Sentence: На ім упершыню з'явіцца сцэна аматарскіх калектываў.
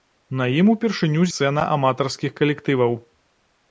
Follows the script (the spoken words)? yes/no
no